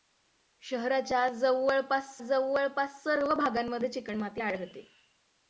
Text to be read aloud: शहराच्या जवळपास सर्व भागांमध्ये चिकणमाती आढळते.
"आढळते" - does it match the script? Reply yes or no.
yes